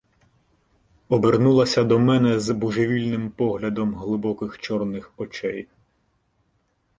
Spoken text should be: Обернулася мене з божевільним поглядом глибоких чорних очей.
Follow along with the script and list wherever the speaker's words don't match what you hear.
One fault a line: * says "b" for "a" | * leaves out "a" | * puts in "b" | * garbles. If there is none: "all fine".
* puts in "до"